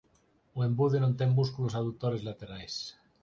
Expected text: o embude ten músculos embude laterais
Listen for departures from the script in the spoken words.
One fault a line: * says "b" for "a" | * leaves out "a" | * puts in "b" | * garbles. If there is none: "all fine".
* puts in "non"
* says "adutores" for "embude"